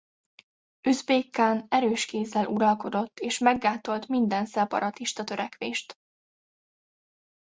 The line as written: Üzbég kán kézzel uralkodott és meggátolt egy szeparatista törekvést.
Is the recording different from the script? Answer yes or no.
yes